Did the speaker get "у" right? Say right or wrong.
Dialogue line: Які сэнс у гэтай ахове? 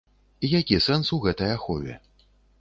right